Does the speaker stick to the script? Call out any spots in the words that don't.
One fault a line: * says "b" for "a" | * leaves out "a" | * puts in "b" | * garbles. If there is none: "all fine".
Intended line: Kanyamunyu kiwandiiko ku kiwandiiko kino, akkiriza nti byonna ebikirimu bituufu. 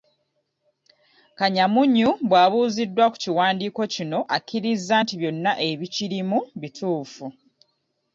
* says "bw'abuuziddwa" for "kiwandiiko"